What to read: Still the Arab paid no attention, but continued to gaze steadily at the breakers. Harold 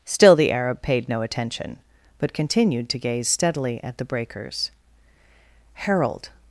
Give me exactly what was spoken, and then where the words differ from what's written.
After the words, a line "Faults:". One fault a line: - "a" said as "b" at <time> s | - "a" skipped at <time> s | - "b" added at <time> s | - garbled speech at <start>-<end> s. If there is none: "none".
Still the Arab paid no attention, but continued to gaze steadily at the breakers. Harold
Faults:
none